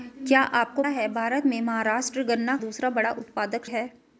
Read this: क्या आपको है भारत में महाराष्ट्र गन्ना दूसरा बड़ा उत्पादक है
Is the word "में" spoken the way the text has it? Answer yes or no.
yes